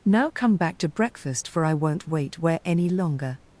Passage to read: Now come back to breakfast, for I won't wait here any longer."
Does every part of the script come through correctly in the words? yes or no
no